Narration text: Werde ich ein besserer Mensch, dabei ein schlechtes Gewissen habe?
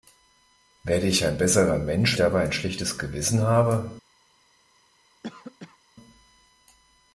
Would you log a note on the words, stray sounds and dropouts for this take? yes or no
yes